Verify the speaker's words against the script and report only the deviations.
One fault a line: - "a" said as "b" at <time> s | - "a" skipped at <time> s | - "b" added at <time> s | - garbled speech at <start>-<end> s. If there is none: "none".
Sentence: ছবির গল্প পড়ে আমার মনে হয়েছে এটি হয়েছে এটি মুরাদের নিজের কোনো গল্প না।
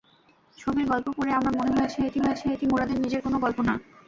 none